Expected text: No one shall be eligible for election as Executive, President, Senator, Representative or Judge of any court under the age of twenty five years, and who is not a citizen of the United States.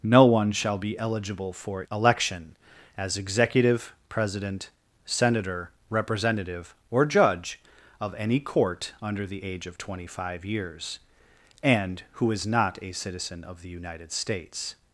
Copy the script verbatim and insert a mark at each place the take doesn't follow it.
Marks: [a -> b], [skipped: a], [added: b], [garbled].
No one shall be eligible for election as Executive, President, Senator, Representative or Judge of any court under the age of twenty five years, and who is not a citizen of the United States.